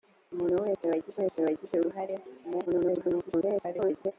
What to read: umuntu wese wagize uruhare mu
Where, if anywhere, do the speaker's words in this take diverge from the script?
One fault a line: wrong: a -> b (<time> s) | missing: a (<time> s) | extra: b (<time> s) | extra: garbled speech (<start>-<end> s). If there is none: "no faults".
extra: wese wagize (1.2 s)
extra: garbled speech (2.7-4.1 s)